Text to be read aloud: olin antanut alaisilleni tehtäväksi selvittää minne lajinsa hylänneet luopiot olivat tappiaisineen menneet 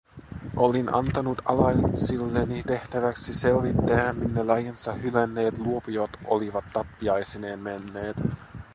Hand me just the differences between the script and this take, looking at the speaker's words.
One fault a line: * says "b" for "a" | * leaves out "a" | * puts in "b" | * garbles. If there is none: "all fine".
all fine